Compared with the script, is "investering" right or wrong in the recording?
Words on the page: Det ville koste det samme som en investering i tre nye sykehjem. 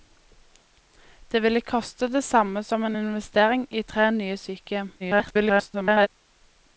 right